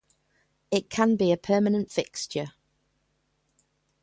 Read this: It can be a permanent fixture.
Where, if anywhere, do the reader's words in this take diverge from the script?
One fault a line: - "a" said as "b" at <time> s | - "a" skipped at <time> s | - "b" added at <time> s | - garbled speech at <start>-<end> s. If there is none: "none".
none